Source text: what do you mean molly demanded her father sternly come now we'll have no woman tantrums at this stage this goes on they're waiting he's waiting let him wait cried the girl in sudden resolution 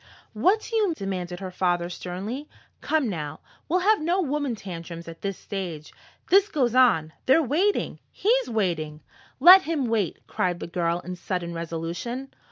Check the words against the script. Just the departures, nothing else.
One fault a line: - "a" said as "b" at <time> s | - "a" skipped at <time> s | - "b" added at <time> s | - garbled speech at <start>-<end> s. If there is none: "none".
- "mean molly" skipped at 0.9 s